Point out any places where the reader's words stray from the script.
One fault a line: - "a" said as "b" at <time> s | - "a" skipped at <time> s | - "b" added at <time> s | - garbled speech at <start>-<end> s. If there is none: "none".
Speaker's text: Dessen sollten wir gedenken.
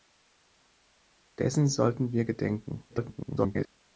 - garbled speech at 2.9-3.7 s